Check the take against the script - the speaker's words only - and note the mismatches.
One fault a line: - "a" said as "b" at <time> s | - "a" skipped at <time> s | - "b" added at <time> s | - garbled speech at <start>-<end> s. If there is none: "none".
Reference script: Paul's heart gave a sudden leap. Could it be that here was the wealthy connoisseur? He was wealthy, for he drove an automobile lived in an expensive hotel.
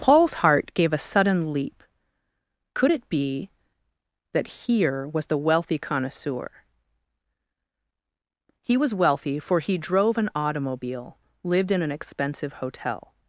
none